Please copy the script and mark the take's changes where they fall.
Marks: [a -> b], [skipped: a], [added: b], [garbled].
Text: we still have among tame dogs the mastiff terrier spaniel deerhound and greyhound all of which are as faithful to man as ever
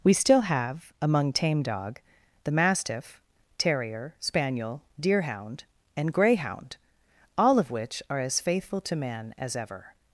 we still have among tame [dogs -> dog] the mastiff terrier spaniel deerhound and greyhound all of which are as faithful to man as ever